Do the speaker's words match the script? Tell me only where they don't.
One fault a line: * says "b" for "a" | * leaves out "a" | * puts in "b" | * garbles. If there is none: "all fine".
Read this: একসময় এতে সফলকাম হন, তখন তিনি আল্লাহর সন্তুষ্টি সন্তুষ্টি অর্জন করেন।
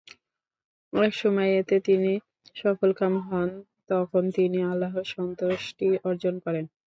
* puts in "তিনি"
* leaves out "সন্তুষ্টি"